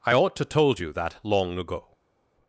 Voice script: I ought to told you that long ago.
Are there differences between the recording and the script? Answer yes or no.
no